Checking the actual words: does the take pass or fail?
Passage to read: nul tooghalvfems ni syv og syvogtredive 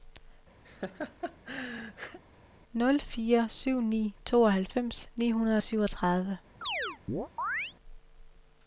fail